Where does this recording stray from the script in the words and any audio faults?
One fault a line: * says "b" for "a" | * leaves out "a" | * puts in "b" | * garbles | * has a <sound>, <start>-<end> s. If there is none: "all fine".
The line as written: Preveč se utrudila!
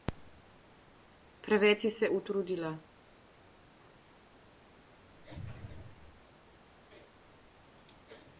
* puts in "si"